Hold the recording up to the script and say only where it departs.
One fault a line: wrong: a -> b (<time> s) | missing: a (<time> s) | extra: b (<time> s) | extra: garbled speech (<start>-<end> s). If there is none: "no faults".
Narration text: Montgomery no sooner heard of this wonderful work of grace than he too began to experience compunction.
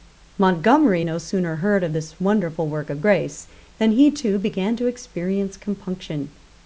no faults